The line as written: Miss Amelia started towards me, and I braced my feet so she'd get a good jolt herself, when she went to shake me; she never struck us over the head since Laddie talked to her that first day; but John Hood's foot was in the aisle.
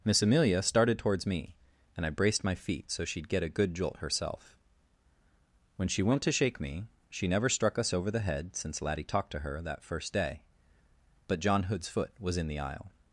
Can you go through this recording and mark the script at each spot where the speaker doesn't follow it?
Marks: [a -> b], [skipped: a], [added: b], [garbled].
Miss Amelia started towards me, and I braced my feet so she'd get a good jolt herself, when she went to shake me; she never struck us over the head since Laddie talked to her that first day; but John Hood's foot was in the aisle.